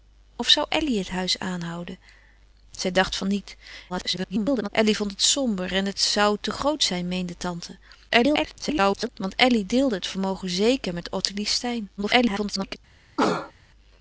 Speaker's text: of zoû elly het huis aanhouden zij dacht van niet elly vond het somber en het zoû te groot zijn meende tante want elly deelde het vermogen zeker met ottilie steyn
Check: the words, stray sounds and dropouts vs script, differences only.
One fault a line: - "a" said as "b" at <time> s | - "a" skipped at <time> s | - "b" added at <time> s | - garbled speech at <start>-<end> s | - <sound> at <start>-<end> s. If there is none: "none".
- garbled speech at 3.9-4.7 s
- garbled speech at 8.1-9.1 s
- garbled speech at 12.0-12.8 s
- cough at 13.2-13.5 s